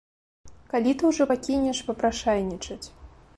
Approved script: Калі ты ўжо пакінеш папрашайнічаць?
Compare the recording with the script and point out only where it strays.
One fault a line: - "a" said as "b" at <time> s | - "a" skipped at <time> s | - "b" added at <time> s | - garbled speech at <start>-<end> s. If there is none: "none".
none